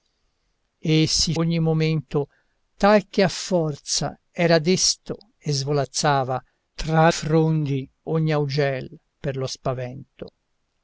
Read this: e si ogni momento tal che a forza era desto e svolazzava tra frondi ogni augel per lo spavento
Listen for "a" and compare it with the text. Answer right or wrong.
right